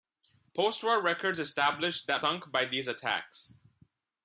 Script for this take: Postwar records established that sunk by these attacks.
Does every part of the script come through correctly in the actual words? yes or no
yes